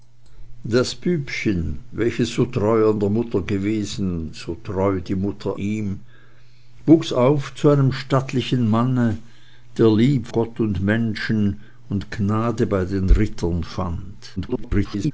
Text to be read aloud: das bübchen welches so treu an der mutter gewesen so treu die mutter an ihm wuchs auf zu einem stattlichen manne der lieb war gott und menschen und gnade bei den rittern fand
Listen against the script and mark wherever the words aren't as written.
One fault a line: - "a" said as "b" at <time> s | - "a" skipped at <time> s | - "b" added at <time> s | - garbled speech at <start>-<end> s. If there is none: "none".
- "an" skipped at 5.6 s
- "war" skipped at 10.3 s
- garbled speech at 14.4-15.1 s